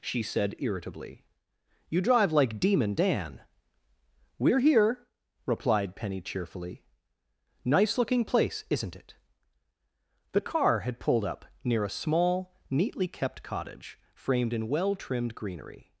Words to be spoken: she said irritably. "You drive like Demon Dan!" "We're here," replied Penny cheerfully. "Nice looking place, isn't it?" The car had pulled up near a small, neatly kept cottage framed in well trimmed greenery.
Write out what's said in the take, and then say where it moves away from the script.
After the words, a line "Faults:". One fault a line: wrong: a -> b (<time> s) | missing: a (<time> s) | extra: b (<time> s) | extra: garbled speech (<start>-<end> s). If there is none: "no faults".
she said irritably. "You drive like Demon Dan!" "We're here," replied Penny cheerfully. "Nice looking place, isn't it?" The car had pulled up near a small, neatly kept cottage framed in well trimmed greenery.
Faults:
no faults